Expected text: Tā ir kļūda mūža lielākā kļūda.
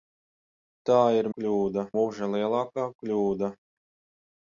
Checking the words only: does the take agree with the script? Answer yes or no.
yes